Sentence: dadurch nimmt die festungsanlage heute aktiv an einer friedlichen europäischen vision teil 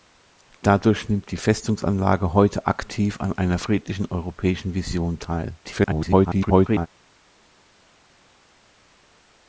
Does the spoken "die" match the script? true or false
true